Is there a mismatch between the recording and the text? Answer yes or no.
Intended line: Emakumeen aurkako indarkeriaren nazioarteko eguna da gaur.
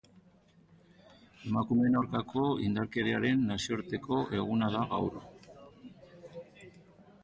no